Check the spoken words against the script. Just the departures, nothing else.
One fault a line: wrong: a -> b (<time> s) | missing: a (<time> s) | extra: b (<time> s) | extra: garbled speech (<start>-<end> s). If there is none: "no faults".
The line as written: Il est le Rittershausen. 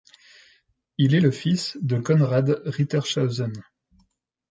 extra: fils de Konrad (1.3 s)